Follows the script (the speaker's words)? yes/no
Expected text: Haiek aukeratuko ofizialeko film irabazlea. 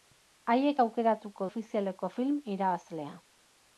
yes